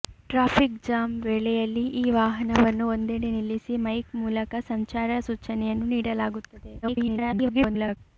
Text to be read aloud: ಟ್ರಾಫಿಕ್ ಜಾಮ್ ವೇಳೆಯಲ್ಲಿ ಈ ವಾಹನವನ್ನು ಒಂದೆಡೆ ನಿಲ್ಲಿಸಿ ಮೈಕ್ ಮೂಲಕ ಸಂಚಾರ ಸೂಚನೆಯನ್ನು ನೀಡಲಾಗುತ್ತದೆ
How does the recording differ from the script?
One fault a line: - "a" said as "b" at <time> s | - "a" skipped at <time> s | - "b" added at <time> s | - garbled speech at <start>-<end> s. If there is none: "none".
- garbled speech at 6.8-8.0 s